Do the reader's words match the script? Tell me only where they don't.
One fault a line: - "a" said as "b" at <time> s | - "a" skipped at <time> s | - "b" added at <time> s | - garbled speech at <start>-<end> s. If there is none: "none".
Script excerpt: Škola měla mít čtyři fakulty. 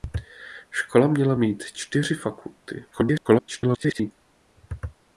- garbled speech at 2.9-4.1 s